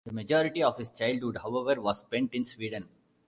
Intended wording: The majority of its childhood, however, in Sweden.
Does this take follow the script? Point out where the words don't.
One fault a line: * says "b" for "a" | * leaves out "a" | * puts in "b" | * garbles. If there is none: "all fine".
* says "his" for "its"
* puts in "was spent"